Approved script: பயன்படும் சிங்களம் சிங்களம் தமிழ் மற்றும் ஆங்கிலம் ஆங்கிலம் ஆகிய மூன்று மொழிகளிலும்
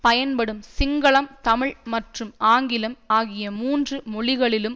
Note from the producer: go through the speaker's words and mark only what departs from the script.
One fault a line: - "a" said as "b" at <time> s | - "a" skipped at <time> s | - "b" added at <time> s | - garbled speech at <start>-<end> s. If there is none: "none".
- "சிங்களம்" skipped at 1.3 s
- "ஆங்கிலம்" skipped at 3.0 s